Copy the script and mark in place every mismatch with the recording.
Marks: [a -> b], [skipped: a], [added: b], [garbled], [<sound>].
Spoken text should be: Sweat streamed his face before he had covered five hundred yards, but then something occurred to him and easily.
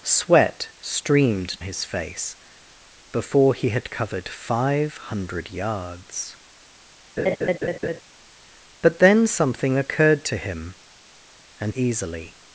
Sweat streamed his face before he had covered five hundred yards, [laugh] but then something occurred to him and easily.